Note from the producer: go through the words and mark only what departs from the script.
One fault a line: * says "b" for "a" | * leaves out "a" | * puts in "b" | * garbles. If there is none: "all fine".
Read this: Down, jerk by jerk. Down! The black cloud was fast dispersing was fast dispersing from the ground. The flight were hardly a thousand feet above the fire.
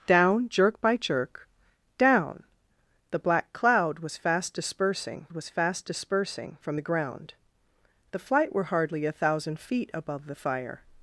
all fine